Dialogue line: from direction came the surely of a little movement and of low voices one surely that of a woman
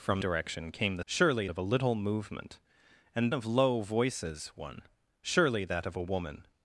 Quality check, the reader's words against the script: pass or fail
pass